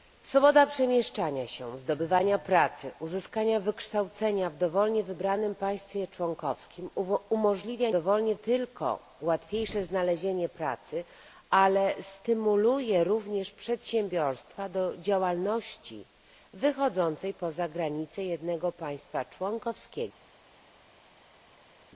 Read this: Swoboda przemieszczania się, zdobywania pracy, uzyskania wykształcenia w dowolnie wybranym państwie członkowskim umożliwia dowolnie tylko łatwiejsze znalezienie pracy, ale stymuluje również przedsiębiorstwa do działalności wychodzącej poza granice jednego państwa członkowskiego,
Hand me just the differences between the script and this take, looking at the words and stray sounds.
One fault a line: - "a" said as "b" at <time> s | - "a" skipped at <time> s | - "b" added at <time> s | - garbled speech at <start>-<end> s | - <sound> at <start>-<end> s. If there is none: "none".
none